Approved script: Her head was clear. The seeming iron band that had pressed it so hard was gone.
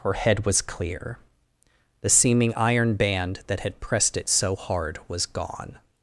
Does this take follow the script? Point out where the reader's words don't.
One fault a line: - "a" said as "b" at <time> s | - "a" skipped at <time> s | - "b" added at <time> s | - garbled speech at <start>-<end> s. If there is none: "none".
none